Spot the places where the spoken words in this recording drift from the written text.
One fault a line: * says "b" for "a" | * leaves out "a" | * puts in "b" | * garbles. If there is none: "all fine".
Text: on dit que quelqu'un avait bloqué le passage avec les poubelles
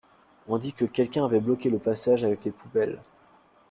all fine